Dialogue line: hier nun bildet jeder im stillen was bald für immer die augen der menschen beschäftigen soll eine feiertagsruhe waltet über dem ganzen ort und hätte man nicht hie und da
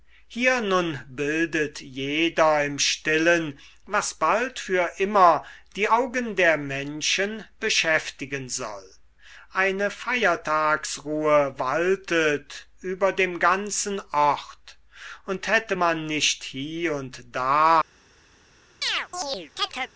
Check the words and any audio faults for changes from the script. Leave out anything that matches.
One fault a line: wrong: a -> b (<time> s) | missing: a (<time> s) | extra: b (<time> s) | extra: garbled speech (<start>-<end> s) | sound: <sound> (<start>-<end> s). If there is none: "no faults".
sound: chirp (18.8-19.9 s)